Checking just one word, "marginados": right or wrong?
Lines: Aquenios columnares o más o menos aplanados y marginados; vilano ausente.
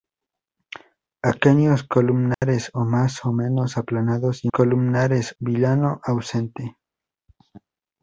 wrong